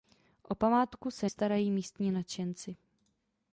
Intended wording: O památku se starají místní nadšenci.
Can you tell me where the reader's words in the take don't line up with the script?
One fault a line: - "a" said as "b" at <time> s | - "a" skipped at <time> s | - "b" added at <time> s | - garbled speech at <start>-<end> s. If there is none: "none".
none